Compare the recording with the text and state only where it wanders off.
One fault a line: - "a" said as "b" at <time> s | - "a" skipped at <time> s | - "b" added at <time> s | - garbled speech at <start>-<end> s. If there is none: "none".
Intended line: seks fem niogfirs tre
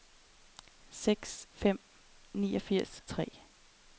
none